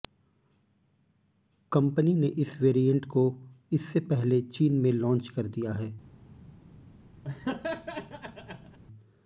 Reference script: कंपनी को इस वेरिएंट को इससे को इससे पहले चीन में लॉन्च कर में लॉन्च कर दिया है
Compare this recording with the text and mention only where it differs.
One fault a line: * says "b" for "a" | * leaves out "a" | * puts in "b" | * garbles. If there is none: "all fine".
* says "ने" for "को"
* leaves out "को इससे"
* leaves out "में लॉन्च कर"